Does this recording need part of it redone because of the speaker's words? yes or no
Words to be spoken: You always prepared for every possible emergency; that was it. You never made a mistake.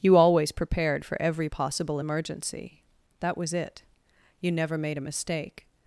no